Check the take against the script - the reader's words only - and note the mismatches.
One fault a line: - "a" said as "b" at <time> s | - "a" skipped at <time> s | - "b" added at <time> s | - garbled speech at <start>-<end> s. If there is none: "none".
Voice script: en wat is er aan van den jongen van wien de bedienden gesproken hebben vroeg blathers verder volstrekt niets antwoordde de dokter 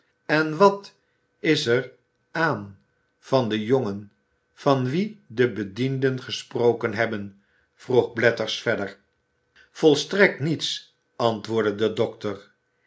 none